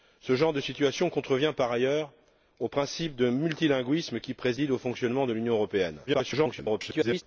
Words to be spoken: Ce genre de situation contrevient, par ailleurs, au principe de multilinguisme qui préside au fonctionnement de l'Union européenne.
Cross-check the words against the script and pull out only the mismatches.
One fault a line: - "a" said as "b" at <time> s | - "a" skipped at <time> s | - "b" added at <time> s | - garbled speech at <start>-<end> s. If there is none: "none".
- garbled speech at 6.1-7.2 s